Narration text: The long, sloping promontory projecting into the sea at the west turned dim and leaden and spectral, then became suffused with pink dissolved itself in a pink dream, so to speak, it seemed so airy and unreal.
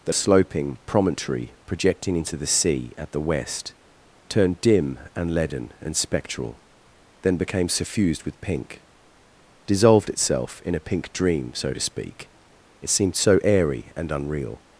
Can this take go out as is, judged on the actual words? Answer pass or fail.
fail